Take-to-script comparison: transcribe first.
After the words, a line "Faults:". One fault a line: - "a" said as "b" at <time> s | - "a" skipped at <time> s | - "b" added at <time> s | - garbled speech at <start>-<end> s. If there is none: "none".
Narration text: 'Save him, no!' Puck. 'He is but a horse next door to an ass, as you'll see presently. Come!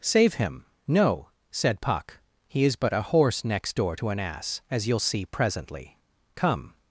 'Save him, no!' said Puck. 'He is but a horse next door to an ass, as you'll see presently. Come!
Faults:
- "said" added at 1.5 s